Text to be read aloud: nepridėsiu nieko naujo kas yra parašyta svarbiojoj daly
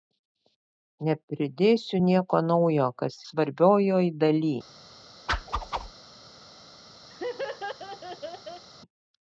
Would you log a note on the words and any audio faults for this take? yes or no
yes